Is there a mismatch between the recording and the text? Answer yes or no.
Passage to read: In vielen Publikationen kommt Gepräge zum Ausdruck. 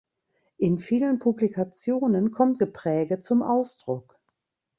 no